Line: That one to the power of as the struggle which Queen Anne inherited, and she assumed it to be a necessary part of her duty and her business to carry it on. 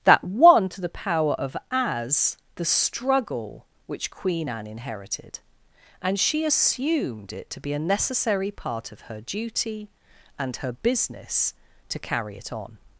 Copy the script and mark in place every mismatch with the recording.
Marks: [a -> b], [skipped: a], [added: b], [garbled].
That one to the power of as the struggle which Queen Anne inherited, and she assumed it to be a necessary part of her duty and her business to carry it on.